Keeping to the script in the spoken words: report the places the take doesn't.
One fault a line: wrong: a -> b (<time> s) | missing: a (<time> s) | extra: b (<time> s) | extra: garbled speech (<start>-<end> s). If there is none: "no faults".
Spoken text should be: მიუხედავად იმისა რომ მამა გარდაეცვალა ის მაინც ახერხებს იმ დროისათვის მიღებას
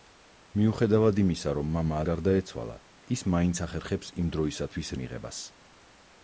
no faults